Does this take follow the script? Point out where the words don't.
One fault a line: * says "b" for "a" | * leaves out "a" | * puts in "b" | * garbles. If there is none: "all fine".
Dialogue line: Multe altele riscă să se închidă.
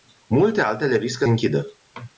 * leaves out "să se"